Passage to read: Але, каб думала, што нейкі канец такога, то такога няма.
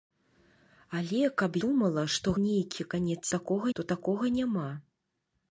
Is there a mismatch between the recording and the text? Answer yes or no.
no